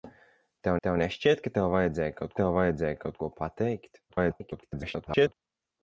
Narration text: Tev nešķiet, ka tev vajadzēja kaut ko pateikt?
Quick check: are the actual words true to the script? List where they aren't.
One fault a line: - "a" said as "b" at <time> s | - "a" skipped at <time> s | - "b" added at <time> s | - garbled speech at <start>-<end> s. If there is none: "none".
- "tev" added at 0.9 s
- "tev vajadzēja kaut" added at 2.4 s
- garbled speech at 4.1-5.3 s